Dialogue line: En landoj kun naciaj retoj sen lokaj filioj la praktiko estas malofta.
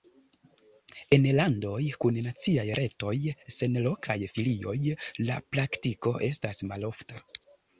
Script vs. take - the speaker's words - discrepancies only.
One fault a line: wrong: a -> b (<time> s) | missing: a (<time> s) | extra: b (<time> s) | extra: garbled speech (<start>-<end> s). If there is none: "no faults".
no faults